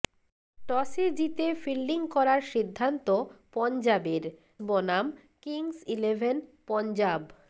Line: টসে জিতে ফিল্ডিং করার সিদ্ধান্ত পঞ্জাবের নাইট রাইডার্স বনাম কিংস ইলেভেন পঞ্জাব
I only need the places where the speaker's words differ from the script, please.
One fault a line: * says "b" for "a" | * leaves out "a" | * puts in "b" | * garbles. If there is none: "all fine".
* leaves out "নাইট রাইডার্স"